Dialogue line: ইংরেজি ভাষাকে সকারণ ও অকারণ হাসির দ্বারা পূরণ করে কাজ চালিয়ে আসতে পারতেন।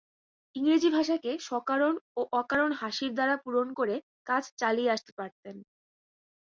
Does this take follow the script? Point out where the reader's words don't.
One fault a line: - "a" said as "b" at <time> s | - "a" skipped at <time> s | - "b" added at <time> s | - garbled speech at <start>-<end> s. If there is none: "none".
none